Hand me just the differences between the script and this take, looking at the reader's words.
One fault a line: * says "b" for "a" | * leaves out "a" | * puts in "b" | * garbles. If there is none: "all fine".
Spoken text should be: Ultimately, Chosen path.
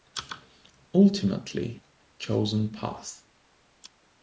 all fine